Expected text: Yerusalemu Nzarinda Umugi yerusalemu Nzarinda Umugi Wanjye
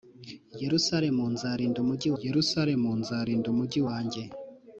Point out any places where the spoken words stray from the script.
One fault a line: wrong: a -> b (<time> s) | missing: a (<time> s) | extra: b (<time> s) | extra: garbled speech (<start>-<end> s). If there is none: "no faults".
no faults